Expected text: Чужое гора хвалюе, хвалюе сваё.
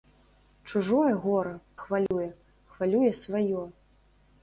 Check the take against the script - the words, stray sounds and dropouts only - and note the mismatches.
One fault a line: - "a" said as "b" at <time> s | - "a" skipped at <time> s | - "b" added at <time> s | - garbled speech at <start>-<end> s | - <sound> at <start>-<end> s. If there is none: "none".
- dropout at 2.1-2.1 s